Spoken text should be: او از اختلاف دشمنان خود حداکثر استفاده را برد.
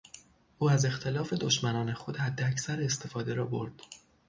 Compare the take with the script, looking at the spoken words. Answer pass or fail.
pass